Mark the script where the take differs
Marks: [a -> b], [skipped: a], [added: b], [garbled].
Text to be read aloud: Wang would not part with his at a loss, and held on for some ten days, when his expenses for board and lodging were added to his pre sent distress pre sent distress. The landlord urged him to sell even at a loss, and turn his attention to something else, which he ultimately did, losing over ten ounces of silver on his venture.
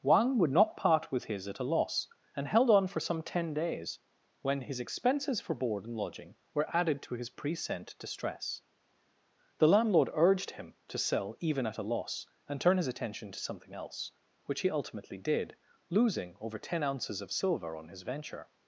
Wang would not part with his at a loss, and held on for some ten days, when his expenses for board and lodging were added to his pre sent distress [skipped: pre sent distress.] The landlord urged him to sell even at a loss, and turn his attention to something else, which he ultimately did, losing over ten ounces of silver on his venture.